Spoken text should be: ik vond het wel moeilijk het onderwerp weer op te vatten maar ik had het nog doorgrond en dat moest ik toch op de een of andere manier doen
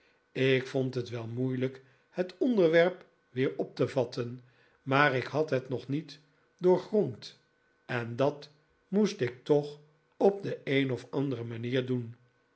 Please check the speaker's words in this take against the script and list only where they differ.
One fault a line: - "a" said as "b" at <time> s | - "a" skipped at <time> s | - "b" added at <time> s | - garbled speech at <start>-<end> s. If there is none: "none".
- "niet" added at 5.9 s